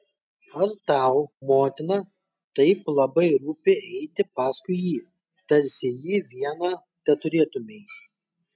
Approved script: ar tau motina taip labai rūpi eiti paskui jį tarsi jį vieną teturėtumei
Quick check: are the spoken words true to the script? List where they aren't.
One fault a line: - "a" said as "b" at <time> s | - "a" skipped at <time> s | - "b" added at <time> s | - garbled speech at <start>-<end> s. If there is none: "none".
none